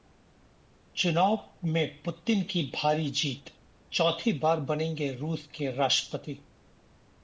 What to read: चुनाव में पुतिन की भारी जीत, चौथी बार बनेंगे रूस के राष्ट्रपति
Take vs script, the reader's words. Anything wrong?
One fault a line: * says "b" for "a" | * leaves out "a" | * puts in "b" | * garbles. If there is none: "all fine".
all fine